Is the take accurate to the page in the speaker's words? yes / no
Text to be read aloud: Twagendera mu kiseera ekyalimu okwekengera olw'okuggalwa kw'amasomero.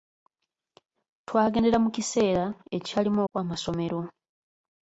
no